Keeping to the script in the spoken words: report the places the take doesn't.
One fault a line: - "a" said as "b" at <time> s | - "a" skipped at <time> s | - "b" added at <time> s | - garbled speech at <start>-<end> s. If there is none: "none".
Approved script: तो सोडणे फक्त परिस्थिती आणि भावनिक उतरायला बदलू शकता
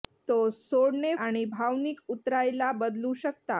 - "फक्त परिस्थिती" skipped at 1.1 s